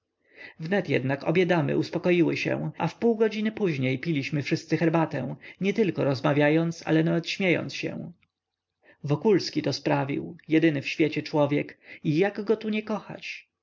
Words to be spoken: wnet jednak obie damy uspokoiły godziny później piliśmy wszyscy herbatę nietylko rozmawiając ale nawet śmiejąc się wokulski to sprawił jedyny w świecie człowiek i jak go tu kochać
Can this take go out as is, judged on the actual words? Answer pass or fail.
fail